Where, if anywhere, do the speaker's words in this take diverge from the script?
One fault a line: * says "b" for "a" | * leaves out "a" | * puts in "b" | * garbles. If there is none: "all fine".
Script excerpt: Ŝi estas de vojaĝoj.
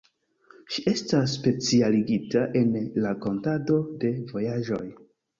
* puts in "specialigita en rakontado"